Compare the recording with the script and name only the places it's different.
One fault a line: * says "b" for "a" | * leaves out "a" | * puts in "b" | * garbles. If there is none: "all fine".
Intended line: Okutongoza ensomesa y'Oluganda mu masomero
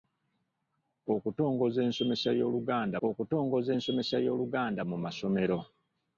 * puts in "okutongoza ensomesa y'Oluganda"